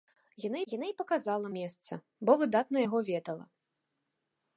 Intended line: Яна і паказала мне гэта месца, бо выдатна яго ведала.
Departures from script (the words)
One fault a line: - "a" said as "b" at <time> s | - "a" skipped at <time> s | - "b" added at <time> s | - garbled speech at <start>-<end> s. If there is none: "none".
- "яна" added at 0.7 s
- "мне гэта" skipped at 1.5 s